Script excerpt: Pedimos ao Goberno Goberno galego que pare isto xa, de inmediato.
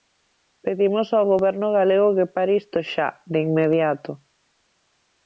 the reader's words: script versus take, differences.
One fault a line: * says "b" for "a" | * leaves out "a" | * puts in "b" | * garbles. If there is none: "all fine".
* leaves out "Goberno"